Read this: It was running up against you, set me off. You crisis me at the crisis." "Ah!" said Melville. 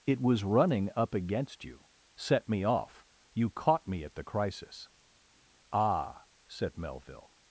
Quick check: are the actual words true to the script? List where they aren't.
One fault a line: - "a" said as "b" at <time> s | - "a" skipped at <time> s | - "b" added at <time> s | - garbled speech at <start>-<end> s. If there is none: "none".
- "crisis" said as "caught" at 3.5 s